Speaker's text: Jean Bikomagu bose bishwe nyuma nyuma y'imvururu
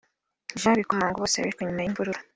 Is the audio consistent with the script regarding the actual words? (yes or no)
no